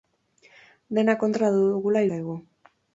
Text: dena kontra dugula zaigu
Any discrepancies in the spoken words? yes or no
no